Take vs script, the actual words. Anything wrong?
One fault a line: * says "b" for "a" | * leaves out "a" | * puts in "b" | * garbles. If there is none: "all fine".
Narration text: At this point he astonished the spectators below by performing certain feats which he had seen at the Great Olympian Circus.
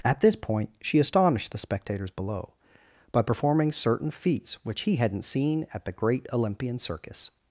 * says "she" for "he"
* says "hadn't" for "had"